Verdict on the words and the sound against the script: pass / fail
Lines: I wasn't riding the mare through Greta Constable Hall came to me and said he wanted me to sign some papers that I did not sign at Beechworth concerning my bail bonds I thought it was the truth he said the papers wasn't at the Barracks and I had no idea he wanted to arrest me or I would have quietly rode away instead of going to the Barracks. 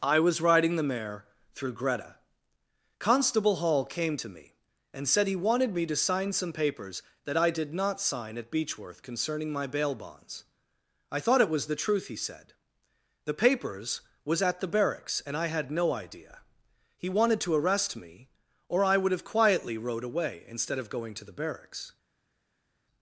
fail